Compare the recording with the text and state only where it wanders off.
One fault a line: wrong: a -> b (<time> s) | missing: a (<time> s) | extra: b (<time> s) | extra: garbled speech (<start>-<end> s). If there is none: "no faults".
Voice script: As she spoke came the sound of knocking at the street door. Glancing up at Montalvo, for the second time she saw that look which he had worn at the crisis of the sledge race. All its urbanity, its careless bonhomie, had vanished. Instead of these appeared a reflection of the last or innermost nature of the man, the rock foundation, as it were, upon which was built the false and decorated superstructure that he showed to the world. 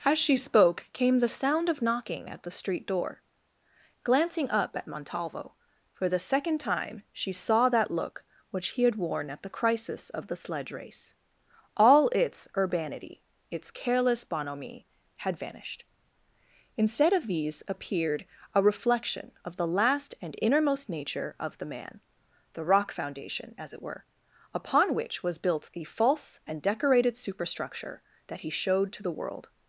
wrong: or -> and (20.2 s)